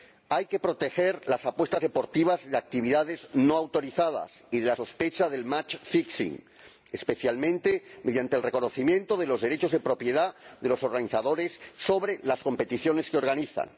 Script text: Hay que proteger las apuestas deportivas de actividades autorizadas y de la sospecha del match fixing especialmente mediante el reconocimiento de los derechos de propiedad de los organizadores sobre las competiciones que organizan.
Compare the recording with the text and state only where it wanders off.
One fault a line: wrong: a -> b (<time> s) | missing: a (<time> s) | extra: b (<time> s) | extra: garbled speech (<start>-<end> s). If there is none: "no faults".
extra: no (3.3 s)